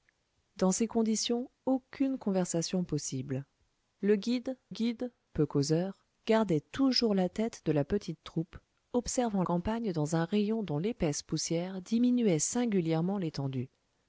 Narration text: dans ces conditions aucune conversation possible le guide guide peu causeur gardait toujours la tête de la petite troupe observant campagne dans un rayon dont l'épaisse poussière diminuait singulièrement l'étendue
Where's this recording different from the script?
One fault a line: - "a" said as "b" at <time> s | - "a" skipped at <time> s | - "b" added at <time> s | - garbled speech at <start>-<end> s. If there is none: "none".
none